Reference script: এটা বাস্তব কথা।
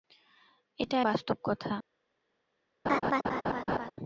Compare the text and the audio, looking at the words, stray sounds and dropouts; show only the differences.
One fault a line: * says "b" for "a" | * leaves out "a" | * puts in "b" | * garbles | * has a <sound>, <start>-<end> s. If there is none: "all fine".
* has a laugh, 2.9-3.9 s